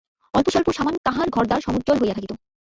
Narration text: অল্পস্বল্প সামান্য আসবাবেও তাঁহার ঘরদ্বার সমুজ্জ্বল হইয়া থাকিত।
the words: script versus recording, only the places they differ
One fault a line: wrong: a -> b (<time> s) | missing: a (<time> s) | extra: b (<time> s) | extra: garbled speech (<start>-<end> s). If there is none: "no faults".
missing: আসবাবেও (1.0 s)